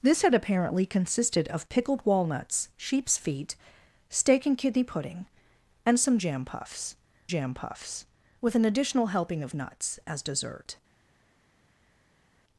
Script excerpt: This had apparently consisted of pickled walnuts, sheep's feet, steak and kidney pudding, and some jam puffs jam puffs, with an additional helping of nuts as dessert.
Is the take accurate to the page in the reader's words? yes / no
yes